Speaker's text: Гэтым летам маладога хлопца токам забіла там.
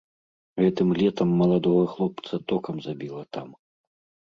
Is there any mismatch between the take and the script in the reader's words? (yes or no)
no